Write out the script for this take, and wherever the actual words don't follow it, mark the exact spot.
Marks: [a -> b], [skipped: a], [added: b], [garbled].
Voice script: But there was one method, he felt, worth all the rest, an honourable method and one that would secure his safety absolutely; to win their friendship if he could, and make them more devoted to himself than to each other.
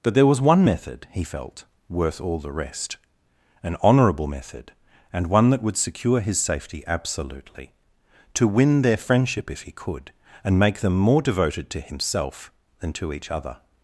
But there was one method, he felt, worth all the rest, an honourable method and one that would secure his safety absolutely; to win their friendship if he could, and make them more devoted to himself than to each other.